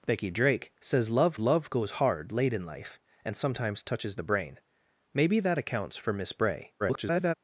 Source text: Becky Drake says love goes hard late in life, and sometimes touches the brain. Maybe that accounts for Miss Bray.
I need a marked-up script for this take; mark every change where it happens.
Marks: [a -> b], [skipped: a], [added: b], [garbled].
Becky Drake says love [added: love] goes hard late in life, and sometimes touches the brain. Maybe that accounts for Miss Bray. [garbled]